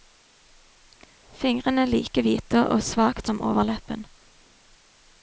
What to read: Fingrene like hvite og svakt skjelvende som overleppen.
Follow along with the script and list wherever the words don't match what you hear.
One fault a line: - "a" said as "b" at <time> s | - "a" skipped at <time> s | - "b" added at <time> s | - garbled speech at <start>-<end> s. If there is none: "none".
- "skjelvende" skipped at 3.3 s